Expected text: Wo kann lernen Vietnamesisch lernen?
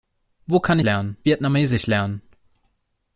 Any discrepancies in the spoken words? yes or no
no